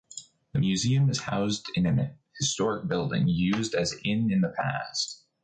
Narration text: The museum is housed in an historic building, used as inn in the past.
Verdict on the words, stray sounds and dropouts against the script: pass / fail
pass